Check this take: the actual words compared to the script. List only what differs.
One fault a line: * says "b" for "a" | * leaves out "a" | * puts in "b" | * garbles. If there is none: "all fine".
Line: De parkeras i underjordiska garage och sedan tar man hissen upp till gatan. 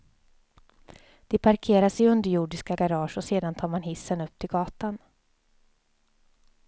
all fine